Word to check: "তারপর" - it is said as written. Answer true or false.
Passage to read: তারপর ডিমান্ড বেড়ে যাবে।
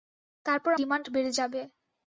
true